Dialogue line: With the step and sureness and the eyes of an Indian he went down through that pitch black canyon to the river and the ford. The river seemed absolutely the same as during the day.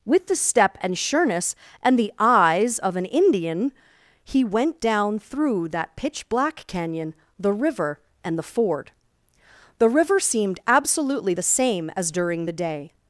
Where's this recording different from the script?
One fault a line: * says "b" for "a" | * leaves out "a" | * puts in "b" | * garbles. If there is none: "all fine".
* leaves out "to"